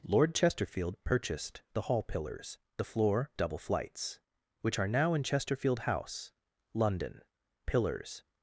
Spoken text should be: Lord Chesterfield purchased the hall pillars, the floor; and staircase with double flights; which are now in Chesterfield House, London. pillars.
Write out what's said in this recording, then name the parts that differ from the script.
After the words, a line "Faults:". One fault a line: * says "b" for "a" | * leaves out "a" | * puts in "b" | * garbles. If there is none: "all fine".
Lord Chesterfield purchased the hall pillars, the floor; double flights; which are now in Chesterfield House, London. pillars.
Faults:
* leaves out "and staircase with"